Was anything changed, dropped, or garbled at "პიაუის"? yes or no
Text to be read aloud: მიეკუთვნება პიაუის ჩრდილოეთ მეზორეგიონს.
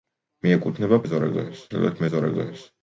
yes